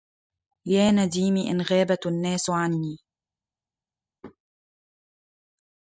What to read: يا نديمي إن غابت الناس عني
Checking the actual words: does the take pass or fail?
pass